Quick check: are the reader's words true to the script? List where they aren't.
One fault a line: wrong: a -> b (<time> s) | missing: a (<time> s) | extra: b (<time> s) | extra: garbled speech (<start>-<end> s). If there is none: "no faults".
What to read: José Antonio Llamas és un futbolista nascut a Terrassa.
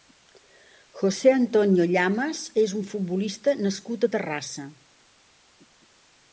no faults